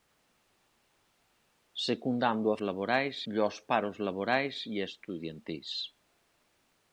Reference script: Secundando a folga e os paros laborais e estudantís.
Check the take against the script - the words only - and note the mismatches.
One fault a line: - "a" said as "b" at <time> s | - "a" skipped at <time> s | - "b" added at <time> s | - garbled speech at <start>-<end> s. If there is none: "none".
- "folga" said as "laborais" at 2.7 s